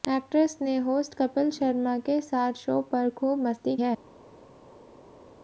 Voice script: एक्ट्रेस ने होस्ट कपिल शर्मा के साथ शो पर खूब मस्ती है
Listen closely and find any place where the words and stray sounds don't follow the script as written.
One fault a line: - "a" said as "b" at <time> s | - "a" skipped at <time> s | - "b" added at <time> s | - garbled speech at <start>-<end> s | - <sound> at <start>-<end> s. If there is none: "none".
none